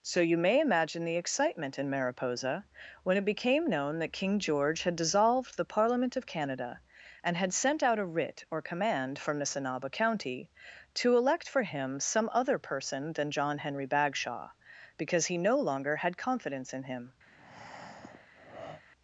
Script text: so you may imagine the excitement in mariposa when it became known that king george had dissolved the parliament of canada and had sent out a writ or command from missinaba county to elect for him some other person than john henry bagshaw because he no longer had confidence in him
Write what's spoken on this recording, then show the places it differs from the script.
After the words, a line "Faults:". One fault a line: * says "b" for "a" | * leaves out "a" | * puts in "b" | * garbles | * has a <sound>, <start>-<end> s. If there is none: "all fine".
so you may imagine the excitement in mariposa when it became known that king george had dissolved the parliament of canada and had sent out a writ or command from missinaba county to elect for him some other person than john henry bagshaw because he no longer had confidence in him
Faults:
* has a breath, 17.3-18.8 s